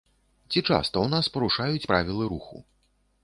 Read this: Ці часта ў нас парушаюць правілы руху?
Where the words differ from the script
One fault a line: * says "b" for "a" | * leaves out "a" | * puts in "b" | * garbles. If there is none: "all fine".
all fine